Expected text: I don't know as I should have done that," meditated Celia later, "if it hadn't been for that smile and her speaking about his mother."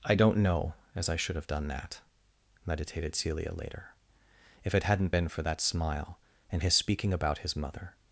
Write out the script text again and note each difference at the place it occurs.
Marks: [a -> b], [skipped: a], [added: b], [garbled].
I don't know as I should have done that," meditated Celia later, "if it hadn't been for that smile and [her -> his] speaking about his mother."